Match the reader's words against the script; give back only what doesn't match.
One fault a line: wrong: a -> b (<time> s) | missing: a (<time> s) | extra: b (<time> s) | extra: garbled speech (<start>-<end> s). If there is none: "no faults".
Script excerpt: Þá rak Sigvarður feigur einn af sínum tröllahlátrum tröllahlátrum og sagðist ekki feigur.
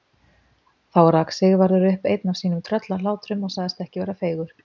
wrong: feigur -> upp (1.9 s)
missing: tröllahlátrum (3.4 s)
extra: vera (4.0 s)